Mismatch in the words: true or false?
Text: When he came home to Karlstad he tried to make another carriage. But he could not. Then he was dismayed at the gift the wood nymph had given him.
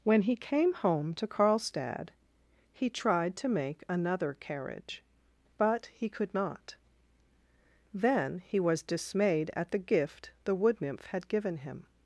false